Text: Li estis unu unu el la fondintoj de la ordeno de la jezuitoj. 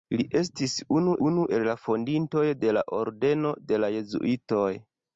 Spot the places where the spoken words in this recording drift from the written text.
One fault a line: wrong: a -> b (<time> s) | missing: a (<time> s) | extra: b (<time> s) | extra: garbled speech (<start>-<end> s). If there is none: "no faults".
no faults